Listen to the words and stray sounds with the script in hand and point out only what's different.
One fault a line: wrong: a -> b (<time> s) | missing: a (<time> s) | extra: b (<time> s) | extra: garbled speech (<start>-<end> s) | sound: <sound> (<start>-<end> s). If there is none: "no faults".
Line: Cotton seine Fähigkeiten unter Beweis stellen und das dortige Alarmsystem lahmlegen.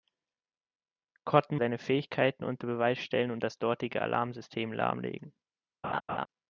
sound: laugh (5.8-6.3 s)